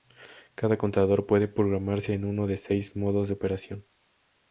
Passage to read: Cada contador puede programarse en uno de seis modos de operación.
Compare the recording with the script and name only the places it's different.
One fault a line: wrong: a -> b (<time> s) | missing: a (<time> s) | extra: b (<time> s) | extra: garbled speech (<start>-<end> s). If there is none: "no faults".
no faults